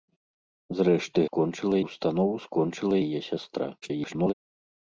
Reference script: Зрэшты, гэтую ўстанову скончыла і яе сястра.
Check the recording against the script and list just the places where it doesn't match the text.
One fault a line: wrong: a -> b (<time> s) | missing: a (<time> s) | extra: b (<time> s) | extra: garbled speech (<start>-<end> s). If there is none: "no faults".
wrong: гэтую -> скончыла (1.3 s)
missing: і (3.0 s)
extra: garbled speech (3.8-4.3 s)